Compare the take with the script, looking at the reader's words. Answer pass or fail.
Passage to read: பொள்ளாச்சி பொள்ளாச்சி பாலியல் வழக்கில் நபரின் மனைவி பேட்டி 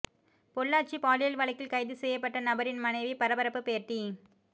fail